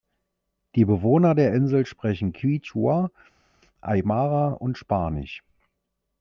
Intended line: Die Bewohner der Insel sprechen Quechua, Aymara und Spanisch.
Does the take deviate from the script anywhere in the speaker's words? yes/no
no